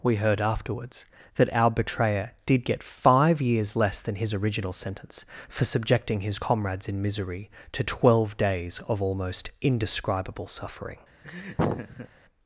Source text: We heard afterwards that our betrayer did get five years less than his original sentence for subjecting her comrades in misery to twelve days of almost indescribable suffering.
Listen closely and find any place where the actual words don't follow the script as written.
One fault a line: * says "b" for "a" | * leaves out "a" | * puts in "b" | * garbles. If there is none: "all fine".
* says "his" for "her"